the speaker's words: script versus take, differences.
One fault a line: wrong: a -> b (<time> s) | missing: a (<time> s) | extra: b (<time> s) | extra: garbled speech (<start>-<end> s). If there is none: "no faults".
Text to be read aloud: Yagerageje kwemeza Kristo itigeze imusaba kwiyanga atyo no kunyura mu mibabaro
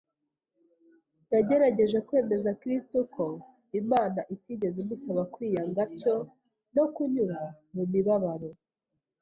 extra: ko Imana (3.1 s)